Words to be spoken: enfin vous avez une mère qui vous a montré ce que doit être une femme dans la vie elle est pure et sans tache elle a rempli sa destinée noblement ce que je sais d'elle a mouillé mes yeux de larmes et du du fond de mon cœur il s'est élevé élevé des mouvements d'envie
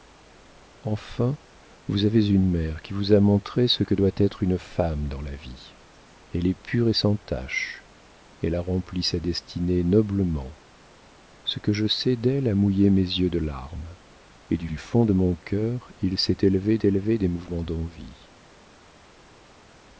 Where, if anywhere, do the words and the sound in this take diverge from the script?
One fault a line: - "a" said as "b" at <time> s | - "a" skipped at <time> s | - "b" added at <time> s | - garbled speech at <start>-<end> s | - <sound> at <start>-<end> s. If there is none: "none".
none